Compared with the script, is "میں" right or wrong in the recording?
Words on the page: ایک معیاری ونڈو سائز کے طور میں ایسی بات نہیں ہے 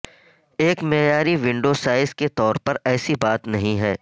wrong